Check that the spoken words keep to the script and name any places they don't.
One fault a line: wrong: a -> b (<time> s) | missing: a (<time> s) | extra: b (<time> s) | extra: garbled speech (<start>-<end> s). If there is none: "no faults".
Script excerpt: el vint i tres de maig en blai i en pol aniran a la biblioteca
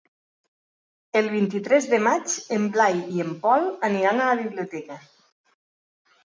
no faults